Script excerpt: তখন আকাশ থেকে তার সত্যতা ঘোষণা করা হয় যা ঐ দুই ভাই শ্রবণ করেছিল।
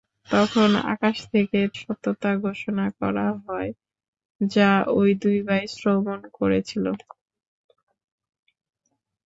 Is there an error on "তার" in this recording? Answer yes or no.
yes